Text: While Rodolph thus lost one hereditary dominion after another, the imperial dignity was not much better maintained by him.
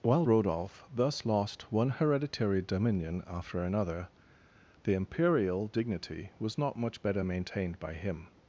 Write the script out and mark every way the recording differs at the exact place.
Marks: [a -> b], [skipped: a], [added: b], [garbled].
While Rodolph thus lost one hereditary dominion after another, the imperial dignity was not much better maintained by him.